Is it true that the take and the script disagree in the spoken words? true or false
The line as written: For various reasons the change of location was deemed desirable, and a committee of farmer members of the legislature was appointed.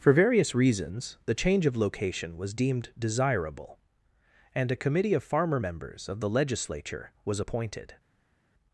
false